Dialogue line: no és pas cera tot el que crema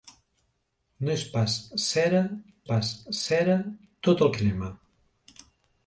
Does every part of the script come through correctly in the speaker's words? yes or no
no